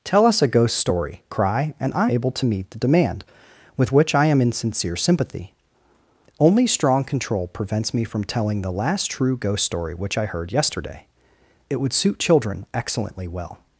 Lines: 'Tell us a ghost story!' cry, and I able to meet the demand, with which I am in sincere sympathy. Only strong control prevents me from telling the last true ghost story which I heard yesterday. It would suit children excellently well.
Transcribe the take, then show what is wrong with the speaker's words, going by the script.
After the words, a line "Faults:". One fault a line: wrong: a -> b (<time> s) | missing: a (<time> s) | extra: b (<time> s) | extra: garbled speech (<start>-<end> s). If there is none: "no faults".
'Tell us a ghost story!' cry, and I able to meet the demand, with which I am in sincere sympathy. Only strong control prevents me from telling the last true ghost story which I heard yesterday. It would suit children excellently well.
Faults:
no faults